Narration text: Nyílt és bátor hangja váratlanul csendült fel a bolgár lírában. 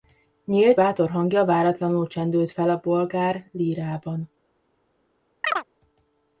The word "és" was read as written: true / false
false